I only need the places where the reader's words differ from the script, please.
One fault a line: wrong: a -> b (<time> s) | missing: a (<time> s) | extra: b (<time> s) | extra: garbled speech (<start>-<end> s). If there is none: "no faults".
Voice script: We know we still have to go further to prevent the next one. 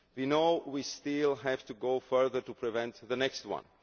no faults